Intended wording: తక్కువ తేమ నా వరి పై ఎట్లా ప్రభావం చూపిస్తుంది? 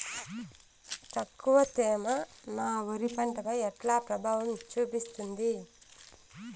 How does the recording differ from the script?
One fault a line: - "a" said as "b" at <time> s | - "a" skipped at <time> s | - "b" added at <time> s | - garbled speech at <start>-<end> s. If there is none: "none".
- "పంట" added at 3.1 s